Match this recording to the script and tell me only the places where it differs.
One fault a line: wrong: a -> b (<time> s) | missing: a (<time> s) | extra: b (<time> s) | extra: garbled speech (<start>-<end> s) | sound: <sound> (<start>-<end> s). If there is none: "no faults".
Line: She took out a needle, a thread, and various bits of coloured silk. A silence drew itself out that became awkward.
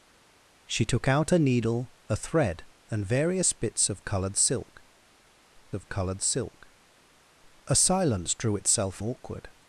extra: of coloured silk (5.7 s)
missing: out that became (9.0 s)